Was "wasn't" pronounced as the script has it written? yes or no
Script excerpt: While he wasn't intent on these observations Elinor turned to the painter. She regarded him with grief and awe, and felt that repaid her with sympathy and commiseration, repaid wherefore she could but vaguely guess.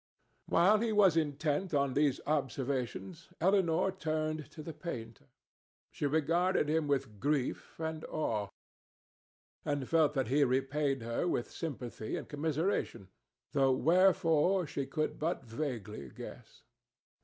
no